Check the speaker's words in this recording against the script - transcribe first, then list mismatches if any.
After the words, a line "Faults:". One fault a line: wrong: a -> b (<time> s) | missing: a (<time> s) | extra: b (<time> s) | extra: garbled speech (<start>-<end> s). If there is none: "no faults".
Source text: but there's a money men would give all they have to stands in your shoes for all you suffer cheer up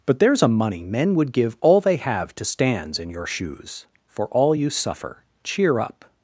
but there's a money men would give all they have to stands in your shoes for all you suffer cheer up
Faults:
no faults